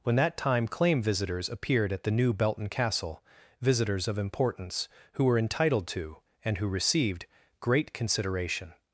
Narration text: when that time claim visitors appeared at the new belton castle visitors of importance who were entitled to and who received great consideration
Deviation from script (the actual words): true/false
false